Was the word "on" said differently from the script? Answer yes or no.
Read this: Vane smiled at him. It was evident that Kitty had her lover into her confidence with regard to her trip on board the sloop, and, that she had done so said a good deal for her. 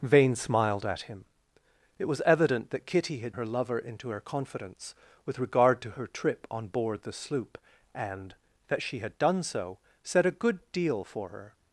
no